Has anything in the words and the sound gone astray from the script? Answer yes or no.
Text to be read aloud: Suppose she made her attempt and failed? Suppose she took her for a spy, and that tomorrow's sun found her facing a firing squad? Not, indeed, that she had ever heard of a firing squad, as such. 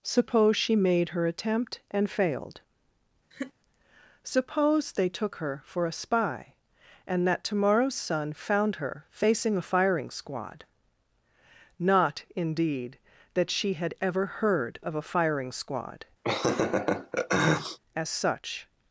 yes